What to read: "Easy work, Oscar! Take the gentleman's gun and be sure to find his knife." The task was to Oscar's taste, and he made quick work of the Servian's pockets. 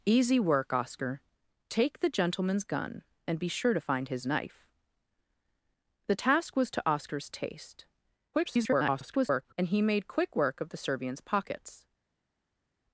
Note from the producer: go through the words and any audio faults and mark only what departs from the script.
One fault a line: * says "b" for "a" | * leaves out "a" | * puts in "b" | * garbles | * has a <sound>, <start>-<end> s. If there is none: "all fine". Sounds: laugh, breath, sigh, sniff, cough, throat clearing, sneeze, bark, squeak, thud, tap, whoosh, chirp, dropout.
* garbles